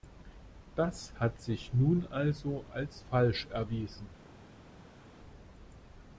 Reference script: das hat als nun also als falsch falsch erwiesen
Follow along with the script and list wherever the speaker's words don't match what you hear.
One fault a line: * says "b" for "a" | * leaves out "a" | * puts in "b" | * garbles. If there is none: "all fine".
* says "sich" for "als"
* leaves out "falsch"